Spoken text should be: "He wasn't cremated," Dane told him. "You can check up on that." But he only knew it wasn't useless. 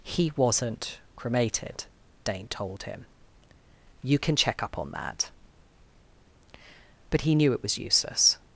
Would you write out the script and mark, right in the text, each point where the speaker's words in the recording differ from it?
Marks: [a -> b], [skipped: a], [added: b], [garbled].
"He wasn't cremated," Dane told him. "You can check up on that." But he [skipped: only] knew it [wasn't -> was] useless.